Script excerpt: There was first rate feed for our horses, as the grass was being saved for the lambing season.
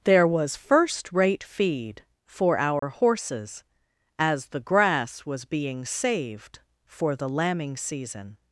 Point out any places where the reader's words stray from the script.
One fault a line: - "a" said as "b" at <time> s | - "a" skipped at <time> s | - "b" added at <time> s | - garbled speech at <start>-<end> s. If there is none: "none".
none